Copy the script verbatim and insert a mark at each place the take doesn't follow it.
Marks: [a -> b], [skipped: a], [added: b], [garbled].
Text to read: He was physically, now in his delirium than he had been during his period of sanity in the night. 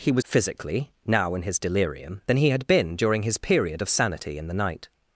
He was physically, now in his delirium than he had been during his period of sanity in the night.